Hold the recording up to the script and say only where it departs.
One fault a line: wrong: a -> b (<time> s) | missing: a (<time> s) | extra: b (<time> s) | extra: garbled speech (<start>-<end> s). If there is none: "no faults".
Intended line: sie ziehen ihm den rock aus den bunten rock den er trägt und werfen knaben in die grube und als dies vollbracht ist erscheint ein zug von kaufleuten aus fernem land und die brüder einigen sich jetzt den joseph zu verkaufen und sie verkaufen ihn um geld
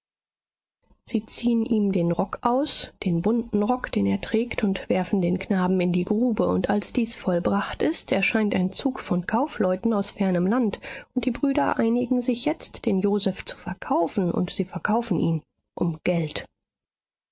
extra: den (5.2 s)